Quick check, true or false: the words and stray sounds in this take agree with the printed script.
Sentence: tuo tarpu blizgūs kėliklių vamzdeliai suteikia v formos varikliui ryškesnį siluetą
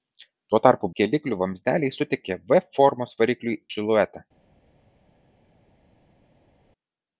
false